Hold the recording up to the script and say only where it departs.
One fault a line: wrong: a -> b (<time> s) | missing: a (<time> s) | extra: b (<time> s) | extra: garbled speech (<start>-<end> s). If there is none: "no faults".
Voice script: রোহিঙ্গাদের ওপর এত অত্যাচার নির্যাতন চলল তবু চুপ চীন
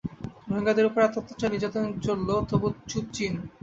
no faults